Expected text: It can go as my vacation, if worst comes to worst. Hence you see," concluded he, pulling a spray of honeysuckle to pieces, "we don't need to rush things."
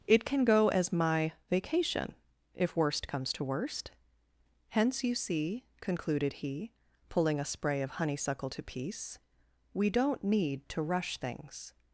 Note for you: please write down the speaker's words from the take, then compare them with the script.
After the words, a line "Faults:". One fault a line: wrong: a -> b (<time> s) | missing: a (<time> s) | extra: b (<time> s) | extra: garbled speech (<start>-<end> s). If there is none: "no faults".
It can go as my vacation, if worst comes to worst. Hence you see," concluded he, pulling a spray of honeysuckle to piece, "we don't need to rush things."
Faults:
wrong: pieces -> piece (8.6 s)